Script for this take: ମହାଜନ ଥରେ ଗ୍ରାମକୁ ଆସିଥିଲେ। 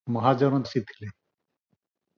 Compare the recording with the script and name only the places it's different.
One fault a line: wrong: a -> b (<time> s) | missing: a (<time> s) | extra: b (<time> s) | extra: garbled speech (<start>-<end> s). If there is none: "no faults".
missing: ଥରେ ଗ୍ରାମକୁ (0.6 s)